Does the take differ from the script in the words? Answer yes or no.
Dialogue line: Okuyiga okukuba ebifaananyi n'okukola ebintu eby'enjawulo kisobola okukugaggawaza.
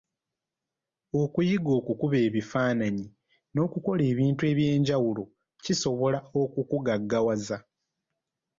no